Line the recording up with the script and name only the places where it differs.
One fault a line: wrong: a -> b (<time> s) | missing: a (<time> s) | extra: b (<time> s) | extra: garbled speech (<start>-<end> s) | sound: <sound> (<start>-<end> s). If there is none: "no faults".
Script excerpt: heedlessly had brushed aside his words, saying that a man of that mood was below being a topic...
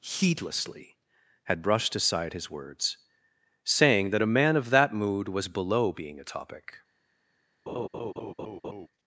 sound: laugh (7.7-8.9 s)